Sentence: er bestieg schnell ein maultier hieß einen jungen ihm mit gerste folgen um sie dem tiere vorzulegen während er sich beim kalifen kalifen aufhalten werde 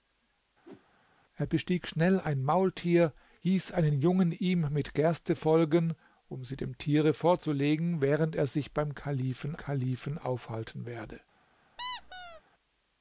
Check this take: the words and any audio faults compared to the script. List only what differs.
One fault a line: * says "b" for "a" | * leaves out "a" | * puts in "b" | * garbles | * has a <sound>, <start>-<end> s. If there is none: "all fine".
* has a whoosh, 0.6-0.9 s
* has a squeak, 11.8-12.4 s